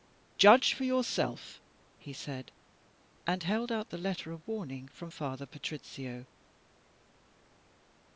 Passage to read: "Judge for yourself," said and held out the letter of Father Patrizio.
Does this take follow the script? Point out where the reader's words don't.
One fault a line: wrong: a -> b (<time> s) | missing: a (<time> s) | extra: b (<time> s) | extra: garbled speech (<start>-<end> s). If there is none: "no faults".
extra: he (2.0 s)
extra: warning from (4.5 s)